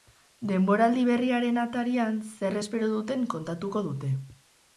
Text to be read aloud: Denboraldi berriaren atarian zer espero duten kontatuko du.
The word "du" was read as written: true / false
false